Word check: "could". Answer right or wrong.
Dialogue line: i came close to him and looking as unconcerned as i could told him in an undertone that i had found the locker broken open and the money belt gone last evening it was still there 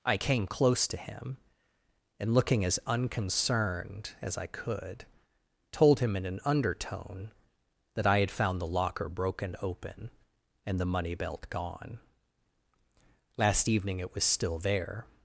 right